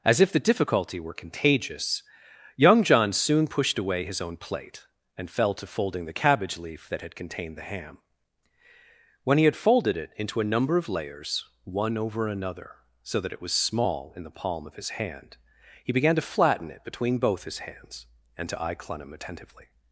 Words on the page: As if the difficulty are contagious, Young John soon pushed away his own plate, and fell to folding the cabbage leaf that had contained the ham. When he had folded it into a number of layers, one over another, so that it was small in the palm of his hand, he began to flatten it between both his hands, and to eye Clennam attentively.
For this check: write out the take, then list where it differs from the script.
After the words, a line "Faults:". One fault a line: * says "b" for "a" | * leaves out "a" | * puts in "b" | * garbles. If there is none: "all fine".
As if the difficulty were contagious, Young John soon pushed away his own plate, and fell to folding the cabbage leaf that had contained the ham. When he had folded it into a number of layers, one over another, so that it was small in the palm of his hand, he began to flatten it between both his hands, and to eye Clennam attentively.
Faults:
* says "were" for "are"